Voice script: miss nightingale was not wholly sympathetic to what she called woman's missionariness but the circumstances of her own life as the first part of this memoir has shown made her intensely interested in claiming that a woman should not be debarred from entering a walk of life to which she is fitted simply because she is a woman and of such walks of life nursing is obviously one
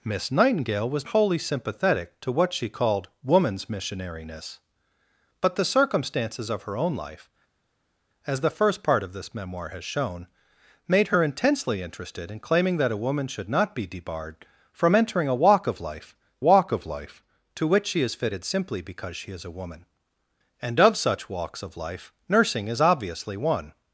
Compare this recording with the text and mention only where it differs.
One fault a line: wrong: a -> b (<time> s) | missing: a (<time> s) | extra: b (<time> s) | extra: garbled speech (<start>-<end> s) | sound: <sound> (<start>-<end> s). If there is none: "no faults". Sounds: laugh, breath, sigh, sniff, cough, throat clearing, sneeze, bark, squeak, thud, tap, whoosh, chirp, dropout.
missing: not (1.1 s)
extra: walk of life (16.4 s)